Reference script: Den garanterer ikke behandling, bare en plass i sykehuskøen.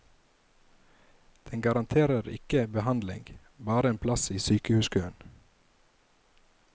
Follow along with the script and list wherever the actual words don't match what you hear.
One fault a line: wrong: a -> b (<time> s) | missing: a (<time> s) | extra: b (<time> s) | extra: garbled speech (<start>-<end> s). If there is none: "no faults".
no faults